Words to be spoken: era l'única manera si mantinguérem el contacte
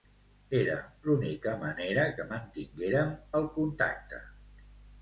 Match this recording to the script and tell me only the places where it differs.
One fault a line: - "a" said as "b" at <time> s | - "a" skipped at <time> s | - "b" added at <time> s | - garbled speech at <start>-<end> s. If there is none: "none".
- "si" said as "que" at 2.1 s